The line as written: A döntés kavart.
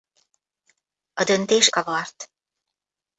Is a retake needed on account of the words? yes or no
no